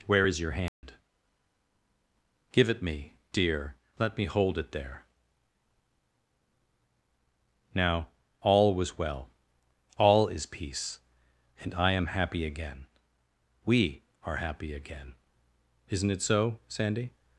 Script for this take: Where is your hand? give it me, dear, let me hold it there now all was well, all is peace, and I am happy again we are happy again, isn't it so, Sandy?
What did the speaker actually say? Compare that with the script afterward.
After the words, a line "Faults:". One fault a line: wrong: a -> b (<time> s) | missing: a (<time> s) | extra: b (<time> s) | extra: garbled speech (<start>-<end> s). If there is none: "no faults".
Where is your hand? give it me, dear, let me hold it there now all was well, all is peace, and I am happy again we are happy again, isn't it so, Sandy?
Faults:
no faults